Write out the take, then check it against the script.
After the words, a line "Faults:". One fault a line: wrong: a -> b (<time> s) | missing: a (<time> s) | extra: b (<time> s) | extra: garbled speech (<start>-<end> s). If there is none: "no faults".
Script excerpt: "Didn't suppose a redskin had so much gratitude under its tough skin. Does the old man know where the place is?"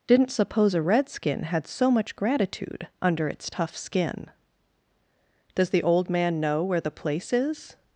"Didn't suppose a redskin had so much gratitude under its tough skin. Does the old man know where the place is?"
Faults:
no faults